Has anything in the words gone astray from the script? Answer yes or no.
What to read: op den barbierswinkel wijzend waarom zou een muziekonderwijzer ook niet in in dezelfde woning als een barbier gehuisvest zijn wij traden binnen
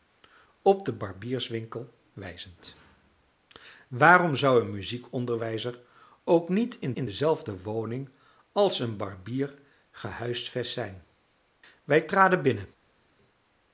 no